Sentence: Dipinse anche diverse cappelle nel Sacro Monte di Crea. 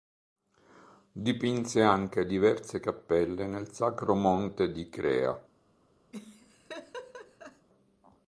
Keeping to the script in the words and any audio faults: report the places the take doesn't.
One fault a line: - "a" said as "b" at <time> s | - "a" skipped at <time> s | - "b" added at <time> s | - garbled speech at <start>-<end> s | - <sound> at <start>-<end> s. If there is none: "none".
- laugh at 6.1-7.7 s